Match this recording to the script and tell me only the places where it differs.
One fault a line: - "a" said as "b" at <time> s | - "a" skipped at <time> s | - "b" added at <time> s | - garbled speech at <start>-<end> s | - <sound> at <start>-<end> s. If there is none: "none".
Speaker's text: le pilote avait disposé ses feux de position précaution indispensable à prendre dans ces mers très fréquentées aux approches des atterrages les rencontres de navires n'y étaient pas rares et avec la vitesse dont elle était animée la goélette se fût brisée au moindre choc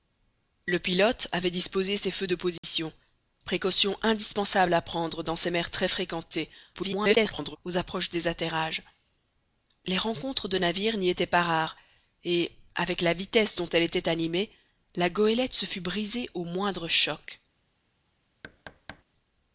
- dropout at 2.6-2.6 s
- garbled speech at 6.7-7.6 s
- thud at 18.4-19.0 s